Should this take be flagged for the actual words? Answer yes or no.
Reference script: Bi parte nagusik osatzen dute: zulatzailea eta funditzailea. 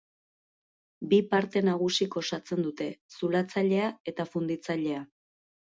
no